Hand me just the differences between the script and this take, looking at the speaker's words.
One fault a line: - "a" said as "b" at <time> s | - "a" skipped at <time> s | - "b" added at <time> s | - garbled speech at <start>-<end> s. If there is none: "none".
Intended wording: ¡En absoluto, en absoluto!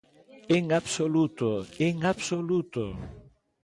none